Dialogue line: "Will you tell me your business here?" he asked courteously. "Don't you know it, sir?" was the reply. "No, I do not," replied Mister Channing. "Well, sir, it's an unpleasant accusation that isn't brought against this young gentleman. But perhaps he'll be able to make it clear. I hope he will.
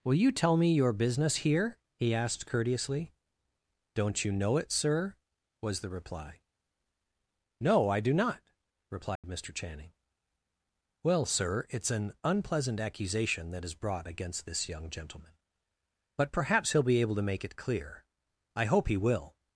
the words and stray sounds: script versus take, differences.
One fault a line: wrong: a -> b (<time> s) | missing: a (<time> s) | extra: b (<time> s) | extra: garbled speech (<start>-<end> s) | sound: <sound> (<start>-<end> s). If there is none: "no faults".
sound: dropout (9.2-9.2 s)
wrong: isn't -> is (13.6 s)